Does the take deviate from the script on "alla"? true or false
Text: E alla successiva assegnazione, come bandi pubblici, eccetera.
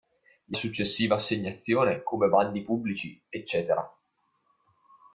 true